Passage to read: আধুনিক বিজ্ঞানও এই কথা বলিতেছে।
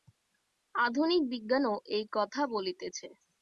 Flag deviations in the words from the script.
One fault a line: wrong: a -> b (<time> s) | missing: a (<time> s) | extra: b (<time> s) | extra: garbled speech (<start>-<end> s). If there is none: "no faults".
no faults